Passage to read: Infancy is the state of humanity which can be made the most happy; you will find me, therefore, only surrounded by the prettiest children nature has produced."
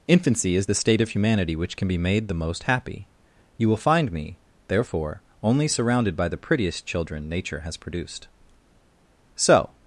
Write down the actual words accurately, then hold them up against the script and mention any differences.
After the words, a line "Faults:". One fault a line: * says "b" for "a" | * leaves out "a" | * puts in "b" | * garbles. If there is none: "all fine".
Infancy is the state of humanity which can be made the most happy; you will find me, therefore, only surrounded by the prettiest children nature has produced." So
Faults:
* puts in "So"